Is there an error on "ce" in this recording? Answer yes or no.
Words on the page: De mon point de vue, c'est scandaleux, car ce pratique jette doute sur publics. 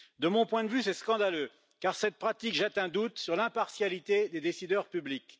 yes